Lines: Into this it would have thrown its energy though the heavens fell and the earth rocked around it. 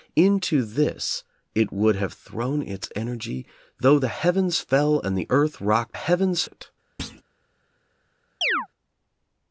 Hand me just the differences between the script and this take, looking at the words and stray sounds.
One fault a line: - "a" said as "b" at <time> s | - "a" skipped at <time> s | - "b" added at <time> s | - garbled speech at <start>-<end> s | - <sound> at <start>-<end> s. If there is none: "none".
- "around" said as "heavens" at 5.9 s
- thud at 7.0-7.2 s
- chirp at 8.4-8.7 s